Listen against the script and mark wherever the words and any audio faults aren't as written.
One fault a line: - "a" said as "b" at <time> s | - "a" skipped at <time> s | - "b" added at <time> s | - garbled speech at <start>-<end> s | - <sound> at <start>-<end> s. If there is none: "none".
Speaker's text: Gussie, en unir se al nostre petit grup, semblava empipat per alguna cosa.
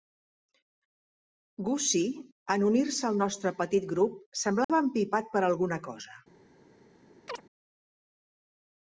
- dropout at 4.6-4.7 s
- chirp at 7.3-7.4 s